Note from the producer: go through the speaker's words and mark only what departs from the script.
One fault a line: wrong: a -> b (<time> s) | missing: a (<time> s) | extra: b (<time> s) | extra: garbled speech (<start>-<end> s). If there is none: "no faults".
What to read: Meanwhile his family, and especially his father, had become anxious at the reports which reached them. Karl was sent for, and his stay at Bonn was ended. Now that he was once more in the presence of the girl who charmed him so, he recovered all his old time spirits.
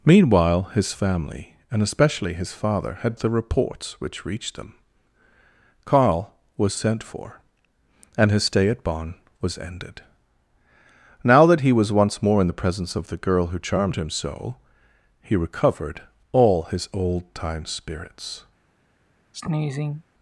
missing: become anxious at (3.1 s)